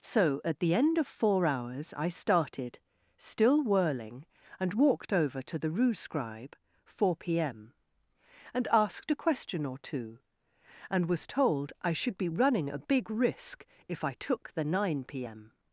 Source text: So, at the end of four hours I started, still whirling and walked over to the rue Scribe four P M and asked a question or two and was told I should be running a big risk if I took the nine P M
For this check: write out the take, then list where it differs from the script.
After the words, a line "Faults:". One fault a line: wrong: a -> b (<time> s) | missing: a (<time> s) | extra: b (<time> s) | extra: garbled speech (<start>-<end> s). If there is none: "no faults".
So, at the end of four hours I started, still whirling and walked over to the rue Scribe four P M and asked a question or two and was told I should be running a big risk if I took the nine P M
Faults:
no faults